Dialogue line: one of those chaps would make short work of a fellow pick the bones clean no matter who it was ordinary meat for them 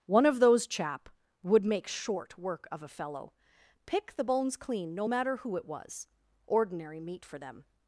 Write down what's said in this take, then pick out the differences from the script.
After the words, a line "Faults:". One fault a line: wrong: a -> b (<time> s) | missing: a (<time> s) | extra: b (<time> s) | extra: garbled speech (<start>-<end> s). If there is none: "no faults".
one of those chap would make short work of a fellow pick the bones clean no matter who it was ordinary meat for them
Faults:
wrong: chaps -> chap (0.7 s)